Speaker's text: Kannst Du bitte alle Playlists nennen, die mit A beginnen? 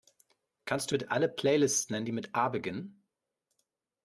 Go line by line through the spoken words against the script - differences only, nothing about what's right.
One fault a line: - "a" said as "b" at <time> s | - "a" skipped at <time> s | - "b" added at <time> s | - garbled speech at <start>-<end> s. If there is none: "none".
none